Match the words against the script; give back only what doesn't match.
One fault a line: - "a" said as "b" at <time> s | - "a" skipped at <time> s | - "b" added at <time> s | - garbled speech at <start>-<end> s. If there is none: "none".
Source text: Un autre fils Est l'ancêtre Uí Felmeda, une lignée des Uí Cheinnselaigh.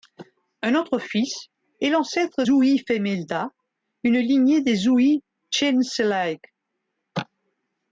none